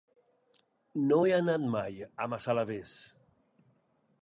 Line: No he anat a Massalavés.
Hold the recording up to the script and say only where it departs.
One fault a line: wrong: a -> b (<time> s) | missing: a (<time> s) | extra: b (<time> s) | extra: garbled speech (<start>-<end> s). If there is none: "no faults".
extra: mai (1.8 s)